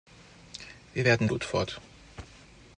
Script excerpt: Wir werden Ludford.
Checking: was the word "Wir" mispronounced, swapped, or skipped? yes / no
no